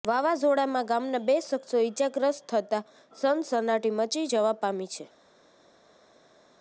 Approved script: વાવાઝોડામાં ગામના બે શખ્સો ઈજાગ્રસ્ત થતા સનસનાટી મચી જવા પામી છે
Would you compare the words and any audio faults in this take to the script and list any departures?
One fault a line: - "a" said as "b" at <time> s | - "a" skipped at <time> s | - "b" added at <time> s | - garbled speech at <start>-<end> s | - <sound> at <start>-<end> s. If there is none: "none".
none